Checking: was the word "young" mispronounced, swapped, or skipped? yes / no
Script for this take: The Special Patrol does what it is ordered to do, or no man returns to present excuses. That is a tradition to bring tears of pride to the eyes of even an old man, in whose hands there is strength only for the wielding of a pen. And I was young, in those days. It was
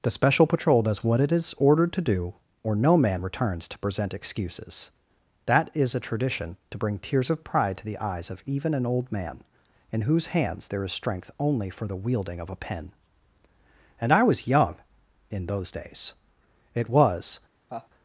no